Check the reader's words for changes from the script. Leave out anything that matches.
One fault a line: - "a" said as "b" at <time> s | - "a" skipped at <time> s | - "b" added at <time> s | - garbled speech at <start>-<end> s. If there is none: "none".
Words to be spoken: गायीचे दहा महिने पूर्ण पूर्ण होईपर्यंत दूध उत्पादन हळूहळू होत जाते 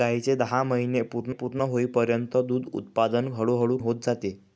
none